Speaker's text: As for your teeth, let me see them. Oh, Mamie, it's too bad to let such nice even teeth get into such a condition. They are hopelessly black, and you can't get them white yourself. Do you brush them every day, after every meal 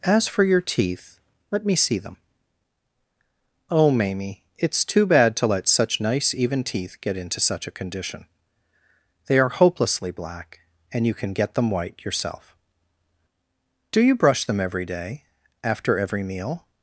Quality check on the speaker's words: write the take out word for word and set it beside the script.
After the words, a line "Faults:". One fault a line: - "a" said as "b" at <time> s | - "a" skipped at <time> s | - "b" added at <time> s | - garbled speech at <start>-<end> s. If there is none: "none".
As for your teeth, let me see them. Oh, Mamie, it's too bad to let such nice even teeth get into such a condition. They are hopelessly black, and you can get them white yourself. Do you brush them every day, after every meal
Faults:
- "can't" said as "can" at 11.1 s